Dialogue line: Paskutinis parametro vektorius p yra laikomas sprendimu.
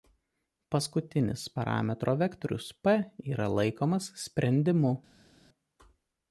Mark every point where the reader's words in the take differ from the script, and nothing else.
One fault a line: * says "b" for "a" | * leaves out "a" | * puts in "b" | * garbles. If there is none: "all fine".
all fine